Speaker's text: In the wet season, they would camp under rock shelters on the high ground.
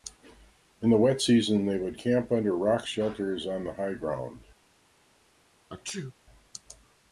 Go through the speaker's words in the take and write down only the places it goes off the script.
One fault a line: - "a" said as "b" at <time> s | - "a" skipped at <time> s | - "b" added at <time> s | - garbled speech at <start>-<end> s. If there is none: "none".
none